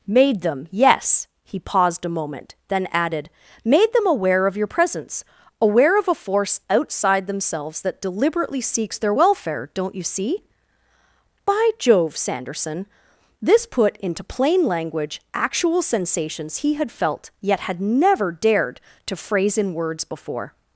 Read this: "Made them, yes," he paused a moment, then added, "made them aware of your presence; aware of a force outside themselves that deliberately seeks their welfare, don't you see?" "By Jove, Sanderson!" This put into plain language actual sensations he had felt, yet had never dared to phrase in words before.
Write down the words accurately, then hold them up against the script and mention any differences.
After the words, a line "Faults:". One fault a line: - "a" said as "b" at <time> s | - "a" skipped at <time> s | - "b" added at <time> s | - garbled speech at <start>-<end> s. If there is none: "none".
"Made them, yes," he paused a moment, then added, "made them aware of your presence; aware of a force outside themselves that deliberately seeks their welfare, don't you see?" "By Jove, Sanderson!" This put into plain language actual sensations he had felt, yet had never dared to phrase in words before.
Faults:
none